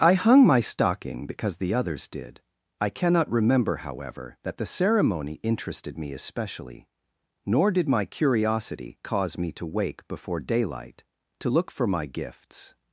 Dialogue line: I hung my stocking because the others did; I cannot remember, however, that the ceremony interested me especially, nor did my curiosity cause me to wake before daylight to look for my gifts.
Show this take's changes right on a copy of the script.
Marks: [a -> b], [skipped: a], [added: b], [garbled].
I hung my stocking because the others did; I cannot remember, however, that the ceremony interested me especially, nor did my curiosity cause me to wake before daylight to look for my gifts.